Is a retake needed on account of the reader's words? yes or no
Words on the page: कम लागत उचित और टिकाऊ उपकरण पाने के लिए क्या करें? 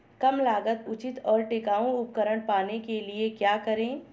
no